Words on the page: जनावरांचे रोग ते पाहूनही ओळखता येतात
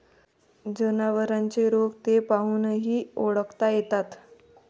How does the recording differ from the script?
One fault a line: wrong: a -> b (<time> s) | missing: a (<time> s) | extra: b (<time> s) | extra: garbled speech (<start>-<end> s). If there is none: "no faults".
no faults